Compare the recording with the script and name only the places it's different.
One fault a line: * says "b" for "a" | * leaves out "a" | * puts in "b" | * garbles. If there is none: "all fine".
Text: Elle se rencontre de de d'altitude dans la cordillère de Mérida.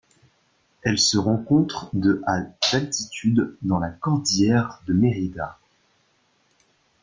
* says "à" for "de"